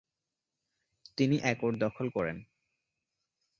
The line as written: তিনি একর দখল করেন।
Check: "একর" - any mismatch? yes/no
no